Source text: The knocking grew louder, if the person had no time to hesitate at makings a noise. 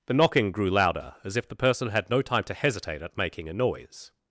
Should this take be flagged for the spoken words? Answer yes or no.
yes